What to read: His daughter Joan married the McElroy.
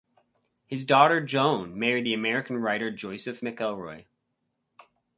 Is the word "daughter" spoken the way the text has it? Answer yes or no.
yes